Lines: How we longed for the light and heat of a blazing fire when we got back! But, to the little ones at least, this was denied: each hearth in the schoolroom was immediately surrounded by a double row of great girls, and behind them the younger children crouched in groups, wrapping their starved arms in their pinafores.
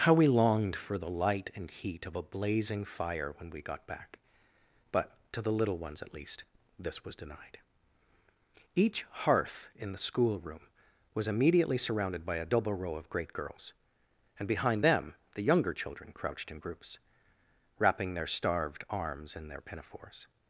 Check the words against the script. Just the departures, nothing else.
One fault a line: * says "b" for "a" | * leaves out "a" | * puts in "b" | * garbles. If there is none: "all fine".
all fine